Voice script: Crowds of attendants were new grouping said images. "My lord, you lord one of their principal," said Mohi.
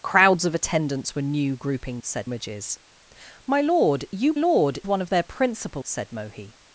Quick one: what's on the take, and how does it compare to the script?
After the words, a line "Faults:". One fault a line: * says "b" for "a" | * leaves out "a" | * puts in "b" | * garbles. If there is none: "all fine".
Crowds of attendants were new grouping said images. "My lord, you lord one of their principal," said Mohi.
Faults:
all fine